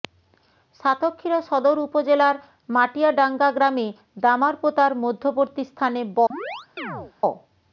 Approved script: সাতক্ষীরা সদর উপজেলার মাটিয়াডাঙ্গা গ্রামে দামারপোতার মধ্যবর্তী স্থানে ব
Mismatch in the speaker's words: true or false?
false